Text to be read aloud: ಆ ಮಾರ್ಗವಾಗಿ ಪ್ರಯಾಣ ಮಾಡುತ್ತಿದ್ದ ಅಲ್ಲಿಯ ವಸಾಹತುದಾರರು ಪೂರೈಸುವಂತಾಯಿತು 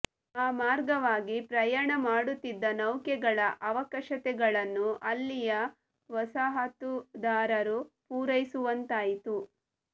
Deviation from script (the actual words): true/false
true